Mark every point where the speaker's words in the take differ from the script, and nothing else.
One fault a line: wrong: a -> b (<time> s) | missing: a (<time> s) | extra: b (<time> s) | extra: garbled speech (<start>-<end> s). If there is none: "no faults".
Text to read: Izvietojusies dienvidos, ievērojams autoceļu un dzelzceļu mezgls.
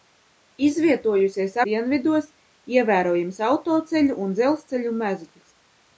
no faults